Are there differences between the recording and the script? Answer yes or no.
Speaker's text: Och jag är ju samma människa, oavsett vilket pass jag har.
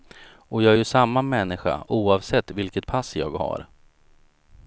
no